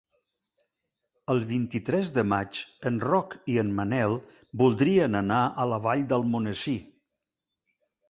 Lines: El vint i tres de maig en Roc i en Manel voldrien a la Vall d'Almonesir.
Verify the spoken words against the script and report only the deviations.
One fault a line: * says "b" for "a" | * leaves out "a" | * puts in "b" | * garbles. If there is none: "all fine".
* puts in "anar"